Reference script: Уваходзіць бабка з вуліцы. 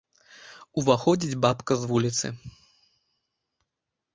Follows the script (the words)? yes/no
yes